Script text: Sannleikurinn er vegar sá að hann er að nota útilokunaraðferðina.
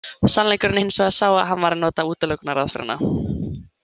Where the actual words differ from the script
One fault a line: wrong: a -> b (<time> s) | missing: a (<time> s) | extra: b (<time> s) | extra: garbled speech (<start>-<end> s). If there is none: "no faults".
extra: hins (0.8 s)
wrong: er -> var (1.7 s)